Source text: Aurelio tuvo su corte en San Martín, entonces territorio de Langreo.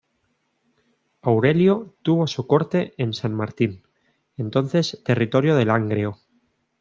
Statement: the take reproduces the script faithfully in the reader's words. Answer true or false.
true